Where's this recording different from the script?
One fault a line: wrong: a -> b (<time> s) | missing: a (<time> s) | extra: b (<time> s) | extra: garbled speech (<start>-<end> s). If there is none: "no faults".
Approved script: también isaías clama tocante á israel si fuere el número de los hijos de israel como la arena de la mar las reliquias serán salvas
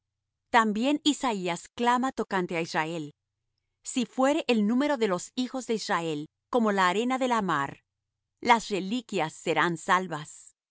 no faults